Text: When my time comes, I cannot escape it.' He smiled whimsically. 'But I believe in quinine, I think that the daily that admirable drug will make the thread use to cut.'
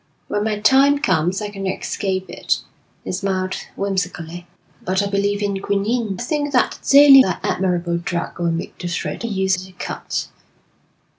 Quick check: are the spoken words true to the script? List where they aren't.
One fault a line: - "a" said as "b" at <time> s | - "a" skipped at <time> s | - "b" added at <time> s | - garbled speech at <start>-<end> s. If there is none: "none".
none